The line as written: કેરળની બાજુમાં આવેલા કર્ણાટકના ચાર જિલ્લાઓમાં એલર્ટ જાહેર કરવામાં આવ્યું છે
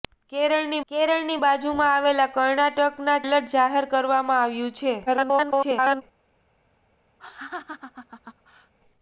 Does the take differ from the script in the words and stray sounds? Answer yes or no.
yes